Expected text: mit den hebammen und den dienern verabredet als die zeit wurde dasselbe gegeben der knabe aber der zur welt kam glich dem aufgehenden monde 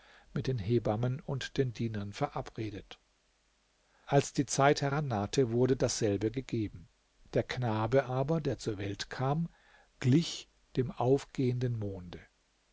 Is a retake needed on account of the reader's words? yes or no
yes